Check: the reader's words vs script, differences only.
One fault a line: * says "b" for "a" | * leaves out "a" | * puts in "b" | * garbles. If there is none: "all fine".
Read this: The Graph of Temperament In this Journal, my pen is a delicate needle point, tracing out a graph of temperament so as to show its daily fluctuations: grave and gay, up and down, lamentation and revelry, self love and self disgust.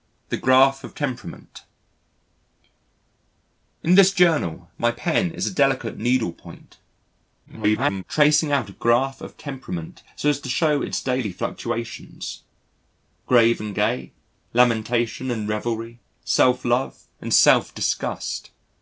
* garbles
* leaves out "up and down"